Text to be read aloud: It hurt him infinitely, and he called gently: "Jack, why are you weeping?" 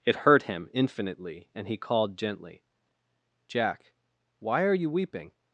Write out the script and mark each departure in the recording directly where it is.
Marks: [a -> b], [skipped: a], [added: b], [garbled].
It hurt him infinitely, and he called gently: "Jack, why are you weeping?"